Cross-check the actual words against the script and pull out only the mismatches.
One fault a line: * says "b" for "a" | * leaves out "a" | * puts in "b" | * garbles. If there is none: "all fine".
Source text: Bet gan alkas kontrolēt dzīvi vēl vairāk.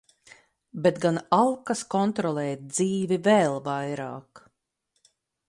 all fine